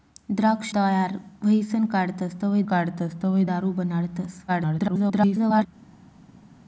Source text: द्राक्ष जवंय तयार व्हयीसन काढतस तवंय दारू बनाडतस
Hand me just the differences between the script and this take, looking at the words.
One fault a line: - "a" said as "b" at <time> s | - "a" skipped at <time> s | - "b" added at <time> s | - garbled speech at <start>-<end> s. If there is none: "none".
- "जवंय" skipped at 0.7 s
- "काढतस तवंय" added at 2.6 s
- garbled speech at 4.5-5.7 s